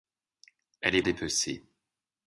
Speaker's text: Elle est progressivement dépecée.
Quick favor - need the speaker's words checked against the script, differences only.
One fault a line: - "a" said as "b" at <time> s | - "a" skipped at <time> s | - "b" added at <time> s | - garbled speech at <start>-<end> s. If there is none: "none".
- "progressivement" skipped at 1.0 s